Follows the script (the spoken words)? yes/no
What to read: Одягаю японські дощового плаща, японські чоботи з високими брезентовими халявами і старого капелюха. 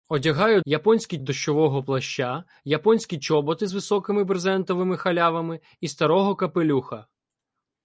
yes